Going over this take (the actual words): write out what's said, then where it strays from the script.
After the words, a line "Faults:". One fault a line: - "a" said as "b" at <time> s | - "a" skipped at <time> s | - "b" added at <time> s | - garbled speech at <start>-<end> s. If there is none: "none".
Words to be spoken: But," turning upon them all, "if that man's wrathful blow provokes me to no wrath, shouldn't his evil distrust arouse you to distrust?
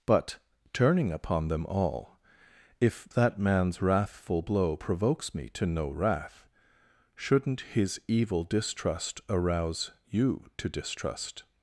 But," turning upon them all, "if that man's wrathful blow provokes me to no wrath, shouldn't his evil distrust arouse you to distrust?
Faults:
none